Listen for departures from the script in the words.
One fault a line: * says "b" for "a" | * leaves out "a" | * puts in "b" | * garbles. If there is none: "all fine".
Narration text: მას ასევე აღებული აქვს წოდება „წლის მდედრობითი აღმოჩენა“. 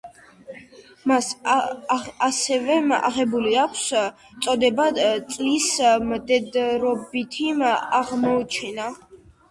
all fine